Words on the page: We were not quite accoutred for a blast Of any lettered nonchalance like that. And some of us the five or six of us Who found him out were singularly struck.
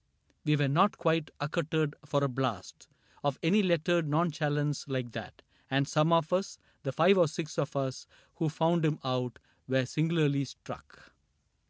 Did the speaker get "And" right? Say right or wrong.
right